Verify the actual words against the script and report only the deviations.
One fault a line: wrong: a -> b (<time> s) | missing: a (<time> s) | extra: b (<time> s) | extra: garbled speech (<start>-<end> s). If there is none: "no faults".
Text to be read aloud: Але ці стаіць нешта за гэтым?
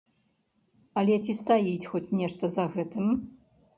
extra: хоць (1.9 s)